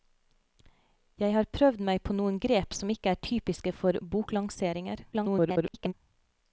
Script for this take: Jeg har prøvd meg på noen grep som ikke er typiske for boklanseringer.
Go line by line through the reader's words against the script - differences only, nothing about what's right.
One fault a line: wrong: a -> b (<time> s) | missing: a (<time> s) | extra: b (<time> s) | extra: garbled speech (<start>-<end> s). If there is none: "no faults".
extra: garbled speech (5.1-5.9 s)